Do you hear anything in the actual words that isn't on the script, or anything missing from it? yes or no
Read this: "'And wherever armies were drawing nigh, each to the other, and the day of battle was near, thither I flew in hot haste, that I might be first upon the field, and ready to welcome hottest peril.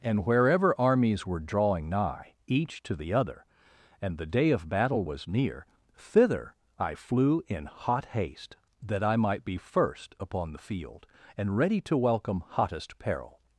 no